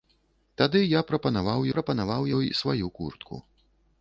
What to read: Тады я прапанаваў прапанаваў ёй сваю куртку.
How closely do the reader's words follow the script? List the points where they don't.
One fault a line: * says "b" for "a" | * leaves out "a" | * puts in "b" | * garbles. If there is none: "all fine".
all fine